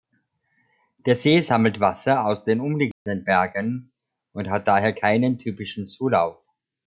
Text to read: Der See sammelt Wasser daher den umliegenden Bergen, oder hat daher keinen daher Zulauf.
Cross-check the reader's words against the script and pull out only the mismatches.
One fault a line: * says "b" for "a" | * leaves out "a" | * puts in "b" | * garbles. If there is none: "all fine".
* says "aus" for "daher"
* says "und" for "oder"
* says "typischen" for "daher"